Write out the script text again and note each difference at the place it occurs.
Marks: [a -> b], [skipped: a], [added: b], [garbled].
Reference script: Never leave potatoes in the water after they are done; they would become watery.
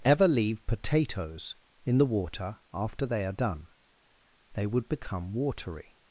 [Never -> Ever] leave potatoes in the water after they are done; they would become watery.